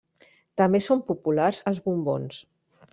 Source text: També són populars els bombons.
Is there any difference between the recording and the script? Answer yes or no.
no